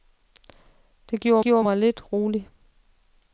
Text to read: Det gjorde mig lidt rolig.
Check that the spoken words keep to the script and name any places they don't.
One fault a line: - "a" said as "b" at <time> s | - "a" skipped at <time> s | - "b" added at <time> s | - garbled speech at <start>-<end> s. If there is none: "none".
- "gjorde" added at 1.4 s